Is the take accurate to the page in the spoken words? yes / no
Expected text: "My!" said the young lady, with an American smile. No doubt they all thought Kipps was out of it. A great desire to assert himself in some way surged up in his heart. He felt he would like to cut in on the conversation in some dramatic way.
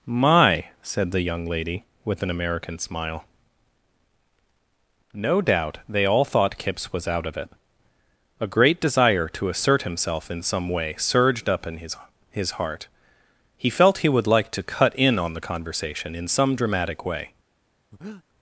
no